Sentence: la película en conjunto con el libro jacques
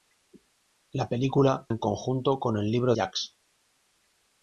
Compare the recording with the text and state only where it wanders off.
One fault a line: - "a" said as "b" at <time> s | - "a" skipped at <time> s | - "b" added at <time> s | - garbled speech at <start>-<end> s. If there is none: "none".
none